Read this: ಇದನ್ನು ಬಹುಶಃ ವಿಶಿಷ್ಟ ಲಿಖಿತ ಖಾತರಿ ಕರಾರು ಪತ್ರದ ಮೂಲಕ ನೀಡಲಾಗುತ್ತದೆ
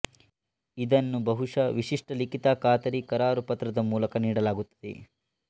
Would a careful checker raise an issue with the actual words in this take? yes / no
no